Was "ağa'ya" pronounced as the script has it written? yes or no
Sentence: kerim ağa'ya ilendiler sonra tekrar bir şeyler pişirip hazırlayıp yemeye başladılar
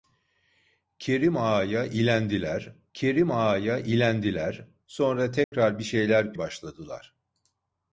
yes